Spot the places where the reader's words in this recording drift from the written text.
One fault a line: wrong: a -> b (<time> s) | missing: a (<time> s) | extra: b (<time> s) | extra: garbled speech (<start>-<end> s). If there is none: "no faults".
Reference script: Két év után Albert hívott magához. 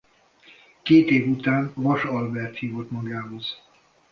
extra: Vass (1.7 s)